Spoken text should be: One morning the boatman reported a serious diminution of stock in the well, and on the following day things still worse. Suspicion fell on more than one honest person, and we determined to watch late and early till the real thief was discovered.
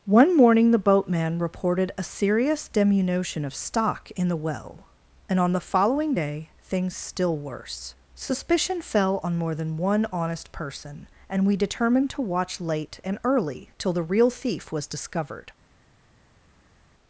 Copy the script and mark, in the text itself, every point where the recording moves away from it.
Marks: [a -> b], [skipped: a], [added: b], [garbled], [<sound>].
One morning the boatman reported a serious diminution of stock in the well, and on the following day things still worse. Suspicion fell on more than one honest person, and we determined to watch late and early till the real thief was discovered.